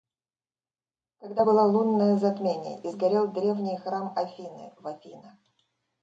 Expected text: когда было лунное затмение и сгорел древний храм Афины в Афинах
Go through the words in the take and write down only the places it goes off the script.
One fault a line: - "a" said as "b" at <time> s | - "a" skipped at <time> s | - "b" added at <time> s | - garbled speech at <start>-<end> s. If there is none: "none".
none